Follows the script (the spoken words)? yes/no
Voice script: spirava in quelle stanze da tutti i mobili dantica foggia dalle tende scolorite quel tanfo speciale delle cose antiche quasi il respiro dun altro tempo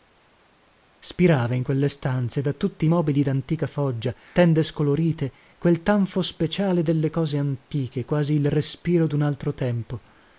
no